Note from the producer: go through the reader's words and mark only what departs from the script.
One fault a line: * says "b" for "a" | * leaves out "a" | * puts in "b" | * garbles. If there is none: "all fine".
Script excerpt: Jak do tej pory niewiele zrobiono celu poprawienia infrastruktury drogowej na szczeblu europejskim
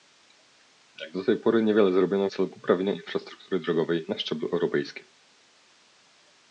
all fine